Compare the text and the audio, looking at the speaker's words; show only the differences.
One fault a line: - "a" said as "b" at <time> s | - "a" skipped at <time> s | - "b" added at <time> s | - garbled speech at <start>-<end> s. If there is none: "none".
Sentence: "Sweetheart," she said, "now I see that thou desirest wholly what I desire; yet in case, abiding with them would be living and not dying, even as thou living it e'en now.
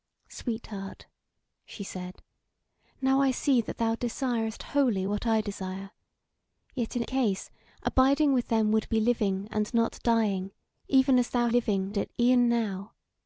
none